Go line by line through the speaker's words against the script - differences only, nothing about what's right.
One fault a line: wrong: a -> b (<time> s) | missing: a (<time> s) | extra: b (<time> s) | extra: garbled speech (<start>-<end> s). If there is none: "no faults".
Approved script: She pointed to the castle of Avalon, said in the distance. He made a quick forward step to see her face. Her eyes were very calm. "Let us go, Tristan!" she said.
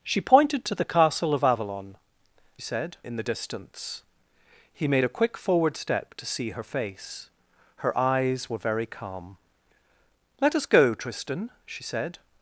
no faults